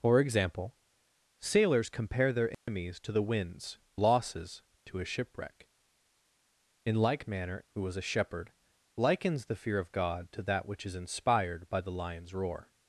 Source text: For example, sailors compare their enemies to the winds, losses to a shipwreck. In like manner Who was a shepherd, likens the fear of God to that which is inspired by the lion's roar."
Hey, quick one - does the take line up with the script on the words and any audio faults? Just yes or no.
no